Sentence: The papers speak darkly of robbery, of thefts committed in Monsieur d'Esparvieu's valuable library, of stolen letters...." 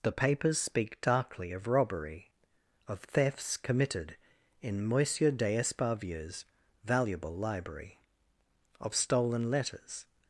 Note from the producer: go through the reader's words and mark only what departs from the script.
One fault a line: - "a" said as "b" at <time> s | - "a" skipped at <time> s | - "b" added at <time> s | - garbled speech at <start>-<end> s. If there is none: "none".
none